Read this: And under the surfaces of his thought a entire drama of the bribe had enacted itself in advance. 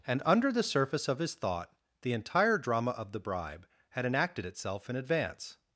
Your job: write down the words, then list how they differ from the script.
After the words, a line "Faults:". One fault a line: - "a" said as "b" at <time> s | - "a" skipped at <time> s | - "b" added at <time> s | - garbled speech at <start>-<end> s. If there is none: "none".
And under the surface of his thought the entire drama of the bribe had enacted itself in advance.
Faults:
- "surfaces" said as "surface" at 0.6 s
- "a" said as "the" at 2.0 s